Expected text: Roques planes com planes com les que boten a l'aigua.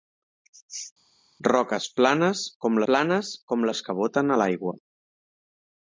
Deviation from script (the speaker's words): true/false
false